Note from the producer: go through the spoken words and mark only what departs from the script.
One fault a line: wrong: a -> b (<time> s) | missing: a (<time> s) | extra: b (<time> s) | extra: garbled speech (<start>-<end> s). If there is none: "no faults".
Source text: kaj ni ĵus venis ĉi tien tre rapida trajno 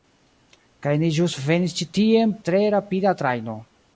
no faults